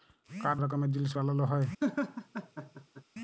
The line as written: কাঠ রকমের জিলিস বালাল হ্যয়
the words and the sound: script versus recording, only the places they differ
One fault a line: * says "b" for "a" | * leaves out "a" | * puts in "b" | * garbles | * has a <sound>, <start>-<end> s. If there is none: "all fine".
* has a laugh, 1.8-3.0 s